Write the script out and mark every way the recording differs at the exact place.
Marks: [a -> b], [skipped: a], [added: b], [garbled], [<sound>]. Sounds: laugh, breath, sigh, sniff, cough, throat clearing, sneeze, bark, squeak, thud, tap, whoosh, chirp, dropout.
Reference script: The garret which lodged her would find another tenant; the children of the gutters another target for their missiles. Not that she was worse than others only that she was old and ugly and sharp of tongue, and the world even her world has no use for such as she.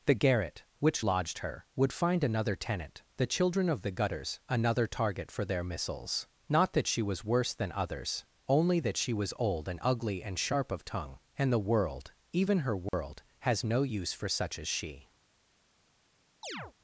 The garret which lodged her would find another tenant; the children of the gutters another target for their missiles. Not that she was worse than others only that she was old and ugly and sharp of tongue, and the world even her world [dropout] has no use for such as she. [chirp]